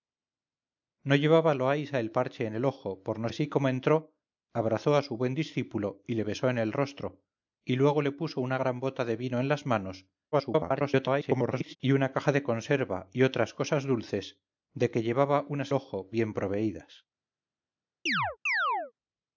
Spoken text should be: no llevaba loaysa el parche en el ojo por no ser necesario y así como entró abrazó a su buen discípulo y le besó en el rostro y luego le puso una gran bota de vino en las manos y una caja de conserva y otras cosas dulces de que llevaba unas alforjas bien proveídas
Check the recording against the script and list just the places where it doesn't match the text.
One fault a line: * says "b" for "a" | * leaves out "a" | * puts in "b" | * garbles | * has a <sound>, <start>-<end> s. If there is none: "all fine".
* leaves out "ser necesario y"
* garbles
* says "ojo" for "alforjas"
* has a chirp, 18.1-18.9 s